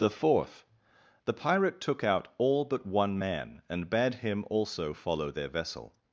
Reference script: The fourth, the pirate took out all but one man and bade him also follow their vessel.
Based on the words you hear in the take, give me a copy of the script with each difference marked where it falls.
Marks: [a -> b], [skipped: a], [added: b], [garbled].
The fourth, the pirate took out all but one man and bade him also follow their vessel.